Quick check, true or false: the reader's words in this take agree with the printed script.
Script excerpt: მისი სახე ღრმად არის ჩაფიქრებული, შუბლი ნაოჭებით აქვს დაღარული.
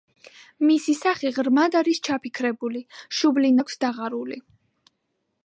false